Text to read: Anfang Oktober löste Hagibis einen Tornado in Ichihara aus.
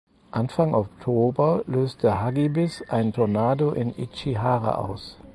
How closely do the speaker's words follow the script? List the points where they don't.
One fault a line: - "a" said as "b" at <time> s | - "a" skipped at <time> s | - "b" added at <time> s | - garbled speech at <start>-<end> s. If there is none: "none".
none